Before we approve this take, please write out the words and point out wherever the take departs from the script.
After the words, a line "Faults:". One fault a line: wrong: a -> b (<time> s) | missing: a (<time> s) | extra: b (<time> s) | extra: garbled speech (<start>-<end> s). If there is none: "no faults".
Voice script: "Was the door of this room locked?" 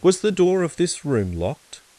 "Was the door of this room locked?"
Faults:
no faults